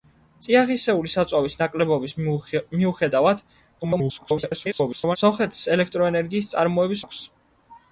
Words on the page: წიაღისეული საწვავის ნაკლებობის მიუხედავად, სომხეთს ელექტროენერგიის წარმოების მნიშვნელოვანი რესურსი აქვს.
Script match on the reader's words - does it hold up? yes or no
no